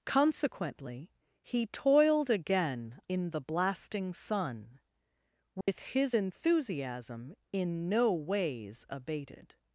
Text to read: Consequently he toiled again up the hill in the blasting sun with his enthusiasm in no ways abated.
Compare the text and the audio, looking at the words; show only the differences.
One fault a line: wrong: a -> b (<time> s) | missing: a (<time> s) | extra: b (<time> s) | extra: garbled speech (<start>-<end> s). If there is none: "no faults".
missing: up the hill (3.0 s)